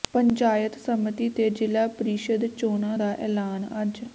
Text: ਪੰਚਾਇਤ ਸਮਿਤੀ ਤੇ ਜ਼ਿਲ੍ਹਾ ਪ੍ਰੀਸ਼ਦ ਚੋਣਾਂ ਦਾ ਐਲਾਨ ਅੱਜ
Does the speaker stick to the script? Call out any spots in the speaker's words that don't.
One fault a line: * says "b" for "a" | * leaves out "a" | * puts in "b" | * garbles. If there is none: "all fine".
all fine